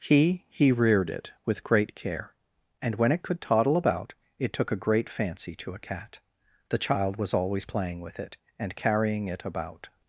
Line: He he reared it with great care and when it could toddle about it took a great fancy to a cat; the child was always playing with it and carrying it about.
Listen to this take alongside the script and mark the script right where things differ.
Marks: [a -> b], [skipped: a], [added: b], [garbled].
He he reared it with great care and when it could toddle about it took a great fancy to a cat; the child was always playing with it and carrying it about.